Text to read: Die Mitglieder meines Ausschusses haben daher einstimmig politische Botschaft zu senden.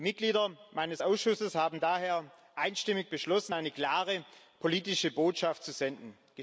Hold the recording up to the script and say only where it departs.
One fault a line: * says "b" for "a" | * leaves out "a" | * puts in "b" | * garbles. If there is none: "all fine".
* puts in "beschlossen eine klare"